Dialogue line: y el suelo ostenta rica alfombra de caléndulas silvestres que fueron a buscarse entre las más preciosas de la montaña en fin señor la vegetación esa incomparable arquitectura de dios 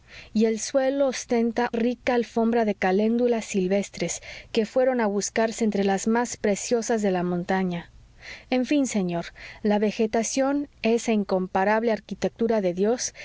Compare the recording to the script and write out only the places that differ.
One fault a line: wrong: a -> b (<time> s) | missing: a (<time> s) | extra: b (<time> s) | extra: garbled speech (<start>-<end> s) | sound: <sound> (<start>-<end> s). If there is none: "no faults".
no faults